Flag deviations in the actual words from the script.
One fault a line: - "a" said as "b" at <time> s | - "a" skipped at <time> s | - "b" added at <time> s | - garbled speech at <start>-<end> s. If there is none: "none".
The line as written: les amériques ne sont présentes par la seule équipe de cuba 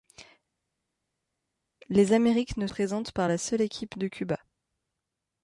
- "sont" skipped at 2.7 s